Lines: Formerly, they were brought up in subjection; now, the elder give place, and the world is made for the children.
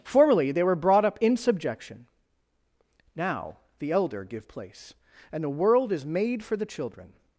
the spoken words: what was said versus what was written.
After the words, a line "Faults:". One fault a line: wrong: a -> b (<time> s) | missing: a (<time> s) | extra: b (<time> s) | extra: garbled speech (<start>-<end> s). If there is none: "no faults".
Formerly, they were brought up in subjection; now, the elder give place, and the world is made for the children.
Faults:
no faults